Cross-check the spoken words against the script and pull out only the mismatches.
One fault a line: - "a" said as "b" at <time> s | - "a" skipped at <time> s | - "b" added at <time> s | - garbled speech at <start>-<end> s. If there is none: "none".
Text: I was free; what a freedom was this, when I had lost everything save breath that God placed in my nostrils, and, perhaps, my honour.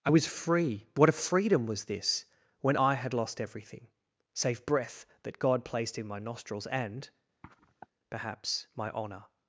none